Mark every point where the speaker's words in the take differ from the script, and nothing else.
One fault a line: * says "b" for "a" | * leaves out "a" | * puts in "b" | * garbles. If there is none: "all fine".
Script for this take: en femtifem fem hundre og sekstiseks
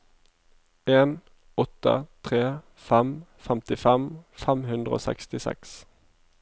* puts in "åtte tre fem"